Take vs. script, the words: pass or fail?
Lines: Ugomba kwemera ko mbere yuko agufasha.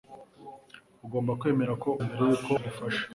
pass